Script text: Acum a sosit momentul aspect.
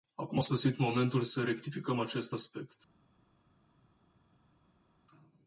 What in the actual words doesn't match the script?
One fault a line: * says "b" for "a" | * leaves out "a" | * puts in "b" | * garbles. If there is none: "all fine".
* puts in "să rectificăm acest"